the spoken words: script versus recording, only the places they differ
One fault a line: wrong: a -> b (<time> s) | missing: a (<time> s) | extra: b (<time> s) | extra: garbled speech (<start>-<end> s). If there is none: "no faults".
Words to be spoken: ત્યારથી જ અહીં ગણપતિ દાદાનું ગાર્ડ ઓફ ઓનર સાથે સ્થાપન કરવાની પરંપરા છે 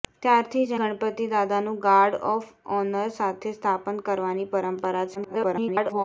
missing: અહીં (0.7 s)
extra: garbled speech (5.2-6.0 s)